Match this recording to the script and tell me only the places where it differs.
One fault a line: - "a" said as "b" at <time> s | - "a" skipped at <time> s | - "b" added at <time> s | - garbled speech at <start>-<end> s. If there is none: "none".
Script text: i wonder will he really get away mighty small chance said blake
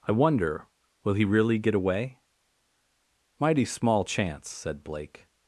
none